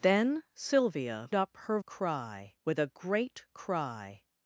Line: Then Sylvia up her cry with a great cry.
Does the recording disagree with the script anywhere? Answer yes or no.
no